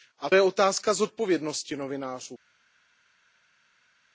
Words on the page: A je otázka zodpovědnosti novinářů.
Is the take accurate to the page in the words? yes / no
yes